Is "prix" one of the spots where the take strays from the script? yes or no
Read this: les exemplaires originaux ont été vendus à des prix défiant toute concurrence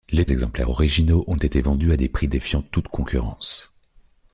no